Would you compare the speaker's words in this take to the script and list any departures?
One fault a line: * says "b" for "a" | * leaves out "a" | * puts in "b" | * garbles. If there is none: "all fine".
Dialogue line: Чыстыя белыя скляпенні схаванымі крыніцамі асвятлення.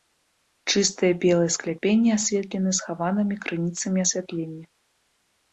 * puts in "асветлены"